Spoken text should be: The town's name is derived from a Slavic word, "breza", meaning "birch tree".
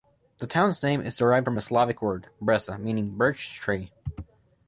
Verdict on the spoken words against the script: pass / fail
pass